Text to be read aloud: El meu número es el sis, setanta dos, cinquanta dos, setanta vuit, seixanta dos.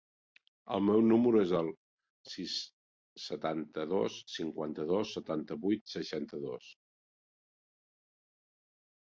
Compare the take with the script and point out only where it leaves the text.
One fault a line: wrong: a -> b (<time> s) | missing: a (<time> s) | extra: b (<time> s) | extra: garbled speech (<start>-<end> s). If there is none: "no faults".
no faults